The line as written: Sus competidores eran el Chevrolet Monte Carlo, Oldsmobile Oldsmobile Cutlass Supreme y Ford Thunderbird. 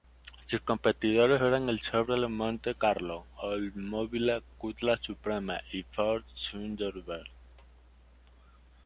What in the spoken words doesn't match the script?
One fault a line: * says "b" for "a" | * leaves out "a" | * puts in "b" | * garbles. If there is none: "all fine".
* leaves out "Oldsmobile"